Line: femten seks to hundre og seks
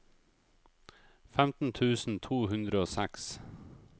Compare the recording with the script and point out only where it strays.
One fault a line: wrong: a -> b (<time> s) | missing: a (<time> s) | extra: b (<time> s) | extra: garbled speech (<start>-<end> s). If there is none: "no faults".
wrong: seks -> tusen (1.7 s)